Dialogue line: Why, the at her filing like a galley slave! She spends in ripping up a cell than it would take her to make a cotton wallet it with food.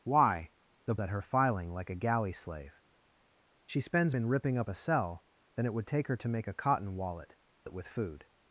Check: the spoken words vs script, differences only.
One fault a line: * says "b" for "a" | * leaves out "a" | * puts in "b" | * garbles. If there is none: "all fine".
all fine